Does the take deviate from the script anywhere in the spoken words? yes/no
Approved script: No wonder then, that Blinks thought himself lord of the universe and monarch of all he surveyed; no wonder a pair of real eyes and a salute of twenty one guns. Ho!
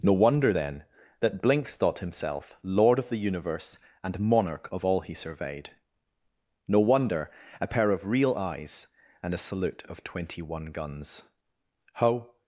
no